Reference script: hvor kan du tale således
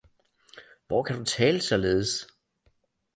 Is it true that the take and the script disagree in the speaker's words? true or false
false